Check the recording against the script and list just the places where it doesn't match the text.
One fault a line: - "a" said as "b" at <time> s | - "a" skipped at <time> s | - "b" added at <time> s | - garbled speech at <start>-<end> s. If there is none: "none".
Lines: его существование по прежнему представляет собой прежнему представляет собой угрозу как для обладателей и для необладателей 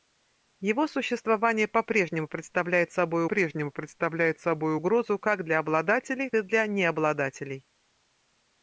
none